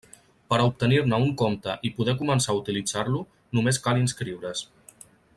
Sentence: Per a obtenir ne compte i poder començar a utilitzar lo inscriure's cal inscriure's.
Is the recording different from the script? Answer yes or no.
yes